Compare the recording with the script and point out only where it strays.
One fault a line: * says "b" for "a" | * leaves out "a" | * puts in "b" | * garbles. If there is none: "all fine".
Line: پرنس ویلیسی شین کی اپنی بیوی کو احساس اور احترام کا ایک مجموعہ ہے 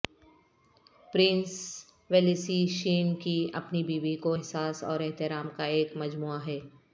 all fine